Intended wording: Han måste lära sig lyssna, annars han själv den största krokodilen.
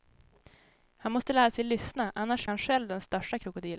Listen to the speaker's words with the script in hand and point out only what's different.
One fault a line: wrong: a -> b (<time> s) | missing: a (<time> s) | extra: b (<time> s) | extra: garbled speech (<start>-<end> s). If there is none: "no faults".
no faults